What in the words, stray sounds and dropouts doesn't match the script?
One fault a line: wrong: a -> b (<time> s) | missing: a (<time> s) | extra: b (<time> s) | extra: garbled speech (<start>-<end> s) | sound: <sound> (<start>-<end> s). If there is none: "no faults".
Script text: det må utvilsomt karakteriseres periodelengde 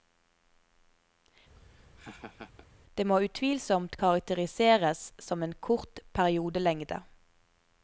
sound: laugh (1.6-2.7 s)
extra: som en kort (5.2 s)